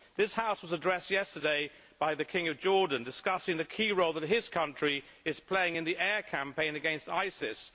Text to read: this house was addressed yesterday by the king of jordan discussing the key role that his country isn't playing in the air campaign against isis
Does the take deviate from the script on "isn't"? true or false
true